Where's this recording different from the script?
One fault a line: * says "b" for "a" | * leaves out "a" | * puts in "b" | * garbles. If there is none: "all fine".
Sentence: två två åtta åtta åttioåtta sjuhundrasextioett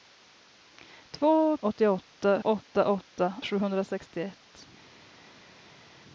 * says "åttioåtta" for "två"
* leaves out "åttioåtta"